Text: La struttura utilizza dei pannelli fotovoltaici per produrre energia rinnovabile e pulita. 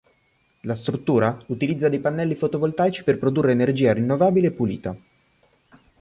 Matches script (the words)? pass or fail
pass